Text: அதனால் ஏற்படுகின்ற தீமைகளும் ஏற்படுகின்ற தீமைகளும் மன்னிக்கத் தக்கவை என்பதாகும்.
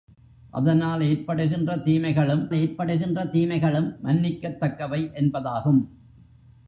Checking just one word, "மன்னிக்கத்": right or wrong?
right